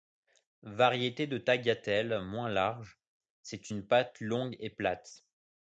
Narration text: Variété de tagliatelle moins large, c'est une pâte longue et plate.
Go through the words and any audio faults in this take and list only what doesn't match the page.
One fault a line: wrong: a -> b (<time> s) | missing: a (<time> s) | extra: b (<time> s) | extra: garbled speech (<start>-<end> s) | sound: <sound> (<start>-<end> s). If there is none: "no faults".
no faults